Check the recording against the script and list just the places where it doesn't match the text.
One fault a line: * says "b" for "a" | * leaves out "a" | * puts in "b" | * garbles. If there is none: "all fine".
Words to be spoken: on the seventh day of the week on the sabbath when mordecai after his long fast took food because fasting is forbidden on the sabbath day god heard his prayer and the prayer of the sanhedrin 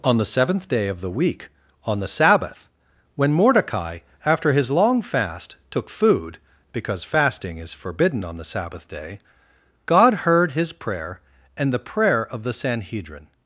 all fine